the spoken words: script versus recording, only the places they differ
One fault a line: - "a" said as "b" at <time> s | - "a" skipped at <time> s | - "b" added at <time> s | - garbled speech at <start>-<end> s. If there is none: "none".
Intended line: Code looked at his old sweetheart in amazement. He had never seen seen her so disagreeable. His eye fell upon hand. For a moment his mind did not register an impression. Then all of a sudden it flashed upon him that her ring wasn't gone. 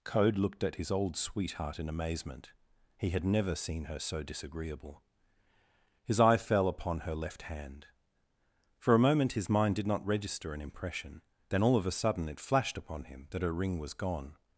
- "seen" skipped at 3.9 s
- "her left" added at 7.0 s
- "wasn't" said as "was" at 13.8 s